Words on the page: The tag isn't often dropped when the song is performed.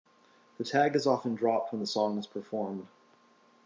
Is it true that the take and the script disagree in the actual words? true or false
true